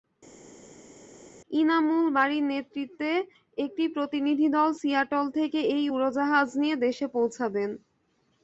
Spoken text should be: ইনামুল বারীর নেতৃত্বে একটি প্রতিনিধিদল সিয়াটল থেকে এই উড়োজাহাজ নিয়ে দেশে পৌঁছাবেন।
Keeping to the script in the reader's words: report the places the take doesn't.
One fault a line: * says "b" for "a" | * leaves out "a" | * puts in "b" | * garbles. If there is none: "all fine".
all fine